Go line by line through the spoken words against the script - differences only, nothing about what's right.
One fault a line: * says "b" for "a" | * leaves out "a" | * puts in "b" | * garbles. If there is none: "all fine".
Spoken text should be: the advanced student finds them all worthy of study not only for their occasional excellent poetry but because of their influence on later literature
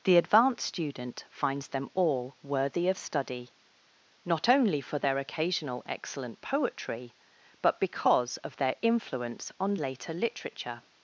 all fine